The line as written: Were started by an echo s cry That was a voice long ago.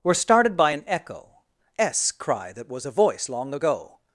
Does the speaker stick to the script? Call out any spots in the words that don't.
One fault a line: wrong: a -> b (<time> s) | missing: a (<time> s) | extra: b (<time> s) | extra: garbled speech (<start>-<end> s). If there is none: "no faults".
no faults